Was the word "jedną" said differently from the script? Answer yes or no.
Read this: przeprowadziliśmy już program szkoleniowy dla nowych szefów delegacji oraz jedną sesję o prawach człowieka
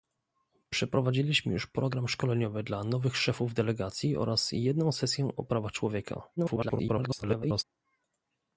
no